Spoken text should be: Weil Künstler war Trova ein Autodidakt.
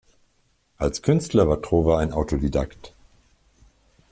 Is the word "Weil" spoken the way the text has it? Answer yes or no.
no